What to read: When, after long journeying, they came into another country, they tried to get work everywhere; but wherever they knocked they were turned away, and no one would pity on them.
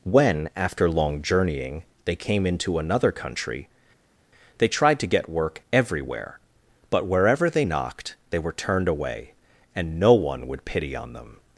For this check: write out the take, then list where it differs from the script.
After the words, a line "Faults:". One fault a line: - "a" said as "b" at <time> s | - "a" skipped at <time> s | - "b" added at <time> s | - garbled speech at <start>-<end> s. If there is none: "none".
When, after long journeying, they came into another country, they tried to get work everywhere; but wherever they knocked they were turned away, and no one would pity on them.
Faults:
none